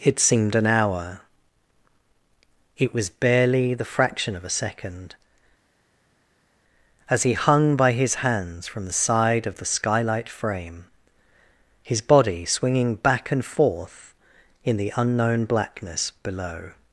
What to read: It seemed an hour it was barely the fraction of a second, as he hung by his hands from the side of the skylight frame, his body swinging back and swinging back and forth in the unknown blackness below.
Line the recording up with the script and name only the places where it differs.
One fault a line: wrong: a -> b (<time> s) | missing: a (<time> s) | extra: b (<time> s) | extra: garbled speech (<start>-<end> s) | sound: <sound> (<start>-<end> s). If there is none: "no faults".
missing: swinging back and (13.4 s)